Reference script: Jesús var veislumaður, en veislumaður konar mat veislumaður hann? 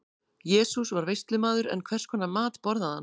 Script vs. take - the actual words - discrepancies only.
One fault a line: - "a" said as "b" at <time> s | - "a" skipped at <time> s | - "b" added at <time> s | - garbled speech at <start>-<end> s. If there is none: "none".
- "veislumaður" said as "hvers" at 1.9 s
- "veislumaður" said as "borðaði" at 2.7 s